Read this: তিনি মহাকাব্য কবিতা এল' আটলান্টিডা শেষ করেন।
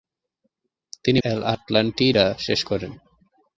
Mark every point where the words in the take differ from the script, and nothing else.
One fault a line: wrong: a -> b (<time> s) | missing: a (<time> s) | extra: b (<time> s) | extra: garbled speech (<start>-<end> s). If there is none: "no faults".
missing: মহাকাব্য কবিতা (1.2 s)